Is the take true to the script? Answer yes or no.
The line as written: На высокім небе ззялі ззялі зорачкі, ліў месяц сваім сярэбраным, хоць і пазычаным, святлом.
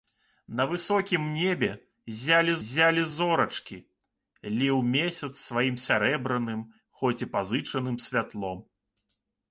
yes